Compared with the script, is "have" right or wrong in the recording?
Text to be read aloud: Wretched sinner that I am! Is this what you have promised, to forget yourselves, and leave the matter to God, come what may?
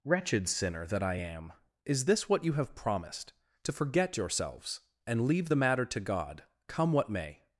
right